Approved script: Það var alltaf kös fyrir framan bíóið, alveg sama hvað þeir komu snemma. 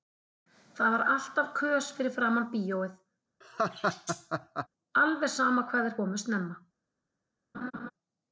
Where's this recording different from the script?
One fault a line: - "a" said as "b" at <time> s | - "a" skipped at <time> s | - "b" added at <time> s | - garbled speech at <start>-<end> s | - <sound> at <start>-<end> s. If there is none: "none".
- laugh at 3.4-4.7 s
- laugh at 7.5-7.9 s